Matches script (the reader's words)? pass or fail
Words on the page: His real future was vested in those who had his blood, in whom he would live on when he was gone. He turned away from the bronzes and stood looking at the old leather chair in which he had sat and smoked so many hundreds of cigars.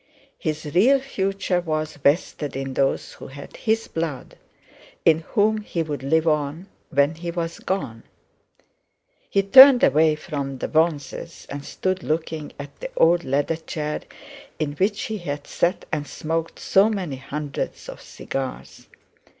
pass